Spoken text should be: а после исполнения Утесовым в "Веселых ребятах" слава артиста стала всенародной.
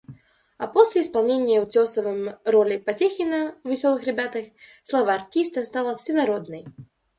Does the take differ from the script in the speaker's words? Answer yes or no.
yes